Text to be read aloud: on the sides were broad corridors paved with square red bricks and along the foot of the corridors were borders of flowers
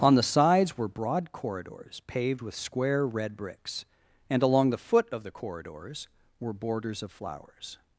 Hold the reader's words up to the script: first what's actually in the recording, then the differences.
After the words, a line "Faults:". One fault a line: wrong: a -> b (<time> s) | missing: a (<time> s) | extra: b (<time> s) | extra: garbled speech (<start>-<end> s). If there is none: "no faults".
on the sides were broad corridors paved with square red bricks and along the foot of the corridors were borders of flowers
Faults:
no faults